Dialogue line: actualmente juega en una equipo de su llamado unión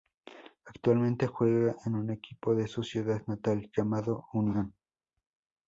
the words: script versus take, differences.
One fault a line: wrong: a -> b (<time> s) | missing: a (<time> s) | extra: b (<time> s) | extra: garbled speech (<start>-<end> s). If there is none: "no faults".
wrong: una -> un (1.9 s)
extra: ciudad natal (2.8 s)